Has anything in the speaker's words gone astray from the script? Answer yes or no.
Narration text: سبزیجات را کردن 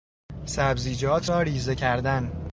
yes